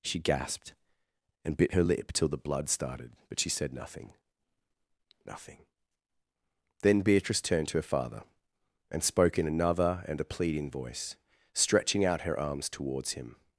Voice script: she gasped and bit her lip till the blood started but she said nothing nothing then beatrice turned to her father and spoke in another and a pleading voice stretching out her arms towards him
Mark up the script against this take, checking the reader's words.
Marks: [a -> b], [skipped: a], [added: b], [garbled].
she gasped and bit her lip till the blood started but she said nothing nothing then beatrice turned to her father and spoke in another and a pleading voice stretching out her arms towards him